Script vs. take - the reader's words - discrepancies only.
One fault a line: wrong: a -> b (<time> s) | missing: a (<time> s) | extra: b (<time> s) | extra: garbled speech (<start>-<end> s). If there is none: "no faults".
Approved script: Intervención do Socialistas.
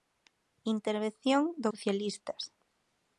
no faults